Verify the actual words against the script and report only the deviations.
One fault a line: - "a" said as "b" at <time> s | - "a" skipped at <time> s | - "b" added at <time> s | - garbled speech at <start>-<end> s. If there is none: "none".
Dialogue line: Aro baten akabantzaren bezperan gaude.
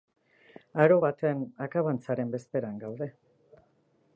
none